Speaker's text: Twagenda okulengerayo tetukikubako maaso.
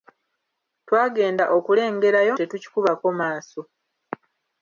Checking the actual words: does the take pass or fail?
pass